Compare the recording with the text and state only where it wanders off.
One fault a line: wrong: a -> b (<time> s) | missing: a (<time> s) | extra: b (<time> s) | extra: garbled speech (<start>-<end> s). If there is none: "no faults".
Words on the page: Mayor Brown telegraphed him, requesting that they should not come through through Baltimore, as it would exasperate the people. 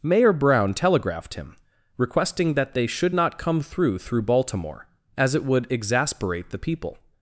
no faults